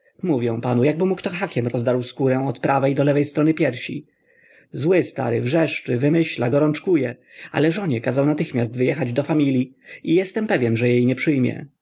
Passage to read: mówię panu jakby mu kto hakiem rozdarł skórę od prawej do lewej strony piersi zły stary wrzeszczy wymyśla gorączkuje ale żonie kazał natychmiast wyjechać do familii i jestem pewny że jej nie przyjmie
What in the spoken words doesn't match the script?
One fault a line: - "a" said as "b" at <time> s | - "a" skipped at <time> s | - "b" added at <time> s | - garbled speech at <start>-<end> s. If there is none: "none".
none